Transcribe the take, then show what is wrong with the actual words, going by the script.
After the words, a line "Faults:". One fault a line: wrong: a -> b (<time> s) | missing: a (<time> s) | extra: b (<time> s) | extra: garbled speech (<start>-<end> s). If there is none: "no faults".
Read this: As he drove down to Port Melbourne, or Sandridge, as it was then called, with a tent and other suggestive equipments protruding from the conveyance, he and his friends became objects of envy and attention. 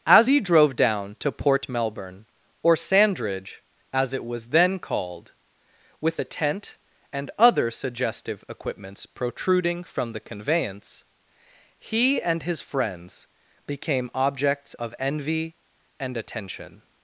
As he drove down to Port Melbourne, or Sandridge, as it was then called, with a tent and other suggestive equipments protruding from the conveyance, he and his friends became objects of envy and attention.
Faults:
no faults